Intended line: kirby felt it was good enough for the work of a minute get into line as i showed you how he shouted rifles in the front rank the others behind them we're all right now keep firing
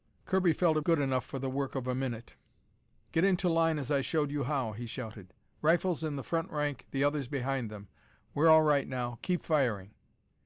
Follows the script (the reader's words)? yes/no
no